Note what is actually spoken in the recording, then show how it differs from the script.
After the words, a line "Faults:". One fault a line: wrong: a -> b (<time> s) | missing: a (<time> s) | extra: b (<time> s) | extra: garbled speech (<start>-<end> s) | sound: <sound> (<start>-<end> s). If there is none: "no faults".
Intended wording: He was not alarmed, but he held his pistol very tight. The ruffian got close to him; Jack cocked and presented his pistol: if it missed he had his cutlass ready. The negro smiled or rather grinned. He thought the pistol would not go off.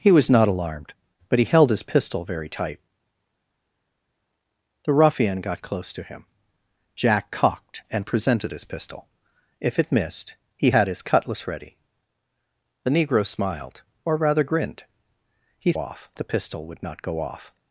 He was not alarmed, but he held his pistol very tight. The ruffian got close to him; Jack cocked and presented his pistol: if it missed he had his cutlass ready. The negro smiled or rather grinned. He off the pistol would not go off.
Faults:
wrong: thought -> off (15.8 s)